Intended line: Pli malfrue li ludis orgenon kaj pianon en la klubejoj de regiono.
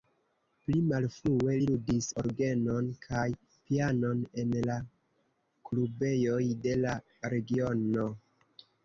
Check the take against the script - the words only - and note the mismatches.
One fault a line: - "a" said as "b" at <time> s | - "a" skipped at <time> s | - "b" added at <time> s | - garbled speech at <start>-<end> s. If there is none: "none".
- "la" added at 6.8 s